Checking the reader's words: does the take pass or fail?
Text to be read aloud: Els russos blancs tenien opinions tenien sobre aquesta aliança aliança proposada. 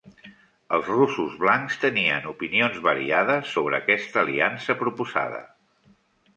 fail